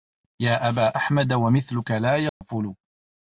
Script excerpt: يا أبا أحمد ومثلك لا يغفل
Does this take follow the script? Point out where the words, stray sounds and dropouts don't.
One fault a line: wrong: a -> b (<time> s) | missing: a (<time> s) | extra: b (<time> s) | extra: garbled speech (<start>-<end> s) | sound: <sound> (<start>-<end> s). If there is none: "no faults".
sound: dropout (2.3-2.4 s)